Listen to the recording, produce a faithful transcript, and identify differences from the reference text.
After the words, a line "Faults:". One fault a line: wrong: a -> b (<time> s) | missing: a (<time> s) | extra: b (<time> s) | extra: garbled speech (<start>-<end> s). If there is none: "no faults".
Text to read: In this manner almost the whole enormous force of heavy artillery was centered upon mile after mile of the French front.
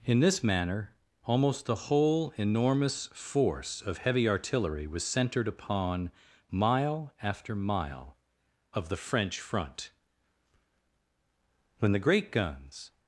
In this manner almost the whole enormous force of heavy artillery was centered upon mile after mile of the French front. When the great guns
Faults:
extra: When the great guns (11.8 s)